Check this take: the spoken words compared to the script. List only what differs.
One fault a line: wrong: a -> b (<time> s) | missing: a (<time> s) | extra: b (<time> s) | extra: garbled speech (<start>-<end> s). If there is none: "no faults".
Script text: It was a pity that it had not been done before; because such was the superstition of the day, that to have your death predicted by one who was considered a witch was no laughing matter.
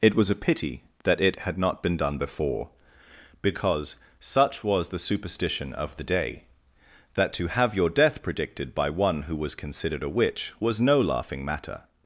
no faults